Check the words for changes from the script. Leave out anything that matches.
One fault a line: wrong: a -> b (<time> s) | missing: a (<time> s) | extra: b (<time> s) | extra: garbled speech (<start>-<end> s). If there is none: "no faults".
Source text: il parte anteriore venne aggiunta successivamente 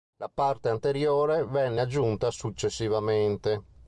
wrong: il -> la (0.2 s)